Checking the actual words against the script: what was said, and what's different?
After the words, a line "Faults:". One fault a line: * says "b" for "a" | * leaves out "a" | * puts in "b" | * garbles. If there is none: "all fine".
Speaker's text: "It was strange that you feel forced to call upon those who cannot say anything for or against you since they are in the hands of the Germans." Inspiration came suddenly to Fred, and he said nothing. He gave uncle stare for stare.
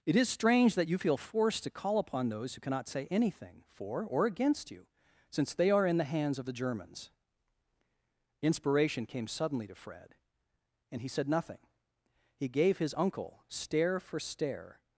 "It is strange that you feel forced to call upon those who cannot say anything for or against you since they are in the hands of the Germans." Inspiration came suddenly to Fred, and he said nothing. He gave his uncle stare for stare.
Faults:
* says "is" for "was"
* puts in "his"